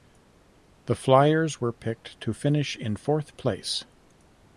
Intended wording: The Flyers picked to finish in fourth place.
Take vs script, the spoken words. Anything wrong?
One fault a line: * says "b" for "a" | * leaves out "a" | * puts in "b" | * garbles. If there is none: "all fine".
* puts in "were"